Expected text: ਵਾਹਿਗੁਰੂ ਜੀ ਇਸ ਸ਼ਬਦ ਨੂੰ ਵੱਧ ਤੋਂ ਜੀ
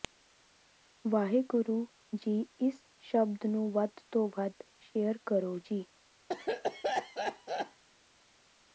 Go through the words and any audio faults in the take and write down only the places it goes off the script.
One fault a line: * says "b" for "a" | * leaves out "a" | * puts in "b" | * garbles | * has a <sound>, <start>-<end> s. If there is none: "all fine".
* puts in "ਵੱਧ ਸ਼ੇਅਰ ਕਰੋ"
* has a cough, 6.3-7.8 s